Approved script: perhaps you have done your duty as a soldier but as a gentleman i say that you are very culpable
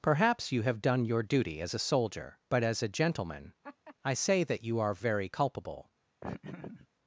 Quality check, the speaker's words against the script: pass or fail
pass